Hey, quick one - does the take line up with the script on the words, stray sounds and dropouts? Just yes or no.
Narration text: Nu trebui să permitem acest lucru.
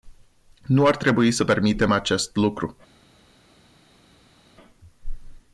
no